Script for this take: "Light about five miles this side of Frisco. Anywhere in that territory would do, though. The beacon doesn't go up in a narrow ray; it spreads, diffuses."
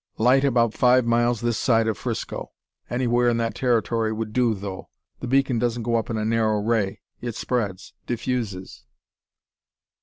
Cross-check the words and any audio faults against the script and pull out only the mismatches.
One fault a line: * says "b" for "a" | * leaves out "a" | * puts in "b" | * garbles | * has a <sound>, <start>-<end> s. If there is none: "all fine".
all fine